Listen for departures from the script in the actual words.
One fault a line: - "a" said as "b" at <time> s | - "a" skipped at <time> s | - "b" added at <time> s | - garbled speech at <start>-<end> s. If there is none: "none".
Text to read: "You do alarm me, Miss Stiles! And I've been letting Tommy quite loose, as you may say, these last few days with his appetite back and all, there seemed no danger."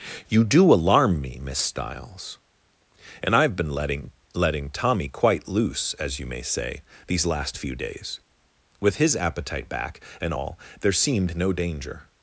- "letting" added at 4.3 s